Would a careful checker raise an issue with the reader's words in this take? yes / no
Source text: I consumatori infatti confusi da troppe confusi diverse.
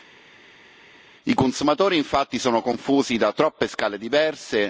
yes